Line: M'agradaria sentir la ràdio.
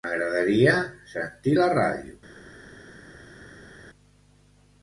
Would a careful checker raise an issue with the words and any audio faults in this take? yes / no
no